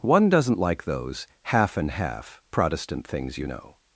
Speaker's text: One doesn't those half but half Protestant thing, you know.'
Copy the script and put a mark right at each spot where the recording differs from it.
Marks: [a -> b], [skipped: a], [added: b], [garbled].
One doesn't [added: like] those half [but -> and] half Protestant [thing, -> things] you know.'